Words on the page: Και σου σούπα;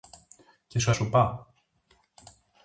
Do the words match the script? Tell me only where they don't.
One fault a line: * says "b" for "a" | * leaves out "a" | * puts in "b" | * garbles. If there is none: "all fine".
all fine